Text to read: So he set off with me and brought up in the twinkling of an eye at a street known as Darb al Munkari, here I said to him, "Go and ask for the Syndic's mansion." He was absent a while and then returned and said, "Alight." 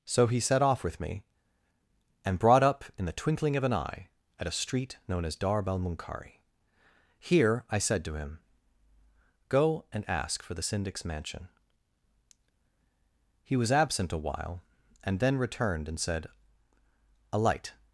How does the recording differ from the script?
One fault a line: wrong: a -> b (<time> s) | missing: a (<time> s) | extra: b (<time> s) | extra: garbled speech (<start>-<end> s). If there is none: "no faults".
no faults